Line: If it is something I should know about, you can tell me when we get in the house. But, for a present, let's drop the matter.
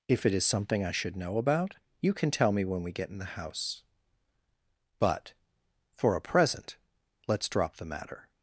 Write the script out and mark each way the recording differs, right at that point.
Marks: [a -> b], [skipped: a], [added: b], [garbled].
If it is something I should know about, you can tell me when we get in the house. But, for a present, let's drop the matter.